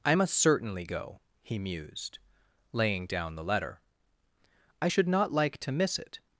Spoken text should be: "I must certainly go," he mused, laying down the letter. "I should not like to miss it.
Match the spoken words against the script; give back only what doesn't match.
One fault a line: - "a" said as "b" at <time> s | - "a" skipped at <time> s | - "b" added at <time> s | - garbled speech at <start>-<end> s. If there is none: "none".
none